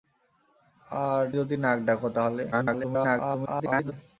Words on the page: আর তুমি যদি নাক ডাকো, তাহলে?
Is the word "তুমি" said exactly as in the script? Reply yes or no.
no